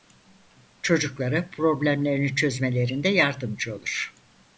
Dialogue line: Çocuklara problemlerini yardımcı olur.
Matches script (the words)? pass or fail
fail